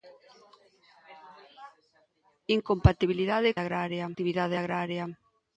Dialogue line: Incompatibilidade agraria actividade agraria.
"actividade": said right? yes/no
yes